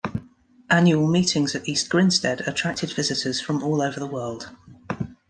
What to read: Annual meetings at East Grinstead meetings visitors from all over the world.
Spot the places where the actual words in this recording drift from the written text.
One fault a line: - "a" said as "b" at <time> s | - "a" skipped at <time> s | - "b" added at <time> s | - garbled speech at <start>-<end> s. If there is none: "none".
- "meetings" said as "attracted" at 2.5 s